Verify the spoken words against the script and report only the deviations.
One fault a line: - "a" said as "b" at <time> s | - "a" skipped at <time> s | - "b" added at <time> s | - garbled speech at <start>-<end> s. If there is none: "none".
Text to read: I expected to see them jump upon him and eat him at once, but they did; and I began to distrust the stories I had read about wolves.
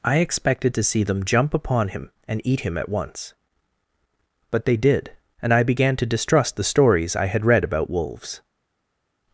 none